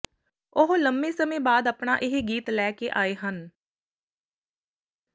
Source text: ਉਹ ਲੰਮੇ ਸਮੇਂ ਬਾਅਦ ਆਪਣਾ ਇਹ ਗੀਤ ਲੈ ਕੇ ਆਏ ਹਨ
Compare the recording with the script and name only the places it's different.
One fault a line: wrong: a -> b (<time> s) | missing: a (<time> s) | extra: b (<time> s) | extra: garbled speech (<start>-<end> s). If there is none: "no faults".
no faults